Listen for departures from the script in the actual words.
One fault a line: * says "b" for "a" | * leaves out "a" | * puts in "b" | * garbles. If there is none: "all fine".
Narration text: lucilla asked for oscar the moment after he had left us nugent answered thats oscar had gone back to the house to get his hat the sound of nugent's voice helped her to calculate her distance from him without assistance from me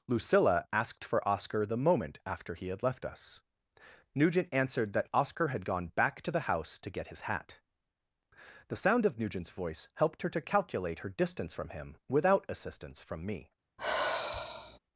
* says "that" for "thats"